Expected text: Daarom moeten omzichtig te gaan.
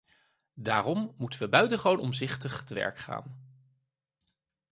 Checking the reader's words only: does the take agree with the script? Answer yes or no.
no